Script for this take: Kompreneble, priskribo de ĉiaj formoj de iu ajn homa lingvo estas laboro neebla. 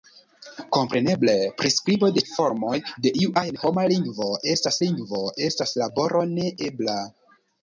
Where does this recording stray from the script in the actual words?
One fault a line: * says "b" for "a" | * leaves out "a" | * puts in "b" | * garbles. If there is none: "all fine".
* leaves out "ĉiaj"
* puts in "lingvo estas"